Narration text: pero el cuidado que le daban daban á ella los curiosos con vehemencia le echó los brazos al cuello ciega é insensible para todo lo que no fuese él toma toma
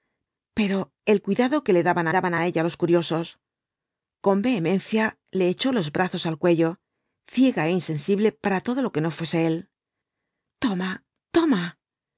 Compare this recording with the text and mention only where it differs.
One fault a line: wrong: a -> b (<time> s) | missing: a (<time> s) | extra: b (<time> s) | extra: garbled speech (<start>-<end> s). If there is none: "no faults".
no faults